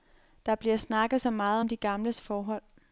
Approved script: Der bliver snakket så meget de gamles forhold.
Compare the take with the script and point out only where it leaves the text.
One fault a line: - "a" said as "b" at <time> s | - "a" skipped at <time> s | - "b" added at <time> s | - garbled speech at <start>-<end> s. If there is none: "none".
- "om" added at 1.6 s